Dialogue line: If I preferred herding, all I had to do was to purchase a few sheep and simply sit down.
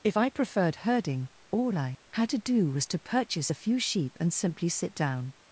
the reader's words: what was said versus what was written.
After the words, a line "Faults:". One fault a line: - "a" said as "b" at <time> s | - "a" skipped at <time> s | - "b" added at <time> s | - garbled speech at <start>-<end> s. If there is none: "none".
If I preferred herding, all I had to do was to purchase a few sheep and simply sit down.
Faults:
none